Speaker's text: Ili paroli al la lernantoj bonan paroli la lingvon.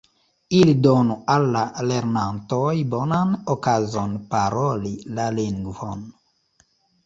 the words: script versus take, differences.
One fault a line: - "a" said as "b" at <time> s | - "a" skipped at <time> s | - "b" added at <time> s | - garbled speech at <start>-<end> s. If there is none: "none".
- "paroli" said as "donu" at 0.8 s
- "okazon" added at 3.6 s